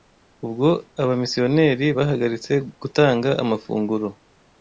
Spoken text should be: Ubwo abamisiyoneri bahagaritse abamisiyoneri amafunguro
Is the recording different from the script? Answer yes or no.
yes